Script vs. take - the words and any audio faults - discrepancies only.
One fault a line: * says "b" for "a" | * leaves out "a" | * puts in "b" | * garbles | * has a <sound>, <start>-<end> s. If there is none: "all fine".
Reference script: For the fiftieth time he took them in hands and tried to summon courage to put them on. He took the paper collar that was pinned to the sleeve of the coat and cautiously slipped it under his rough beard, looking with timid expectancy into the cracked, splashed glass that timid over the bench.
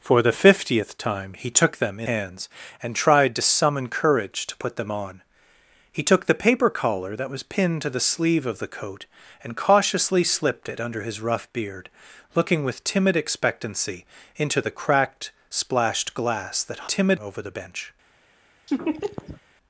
* has a laugh, 18.7-19.4 s